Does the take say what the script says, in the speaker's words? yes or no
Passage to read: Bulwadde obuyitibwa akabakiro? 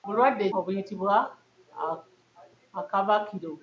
yes